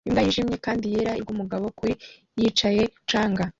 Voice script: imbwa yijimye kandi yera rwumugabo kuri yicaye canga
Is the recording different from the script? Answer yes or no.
no